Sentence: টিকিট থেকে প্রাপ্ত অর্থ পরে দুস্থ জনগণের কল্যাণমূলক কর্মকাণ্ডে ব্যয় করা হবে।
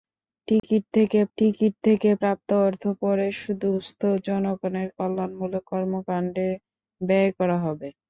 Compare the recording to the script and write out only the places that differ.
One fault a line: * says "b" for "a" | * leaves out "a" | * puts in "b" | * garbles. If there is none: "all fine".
* puts in "টিকিট থেকে"